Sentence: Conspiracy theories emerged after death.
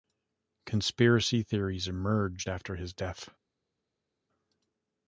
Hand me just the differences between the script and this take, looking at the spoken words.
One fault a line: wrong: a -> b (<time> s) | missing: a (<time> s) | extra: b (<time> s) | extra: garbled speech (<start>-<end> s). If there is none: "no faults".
extra: his (2.8 s)